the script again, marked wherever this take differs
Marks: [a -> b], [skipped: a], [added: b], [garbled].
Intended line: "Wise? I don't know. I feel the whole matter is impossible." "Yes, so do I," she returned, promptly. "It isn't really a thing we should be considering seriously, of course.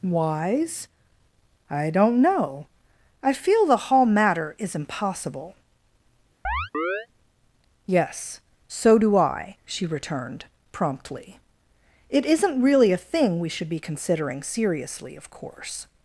"Wise? I don't know. I feel the [whole -> hall] matter is impossible." "Yes, so do I," she returned, promptly. "It isn't really a thing we should be considering seriously, of course.